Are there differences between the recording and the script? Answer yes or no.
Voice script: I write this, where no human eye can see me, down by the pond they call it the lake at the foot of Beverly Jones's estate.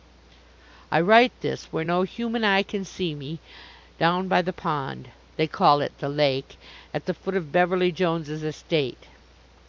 no